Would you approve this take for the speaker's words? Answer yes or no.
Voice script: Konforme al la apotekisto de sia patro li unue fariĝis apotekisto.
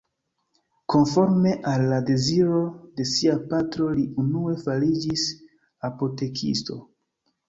no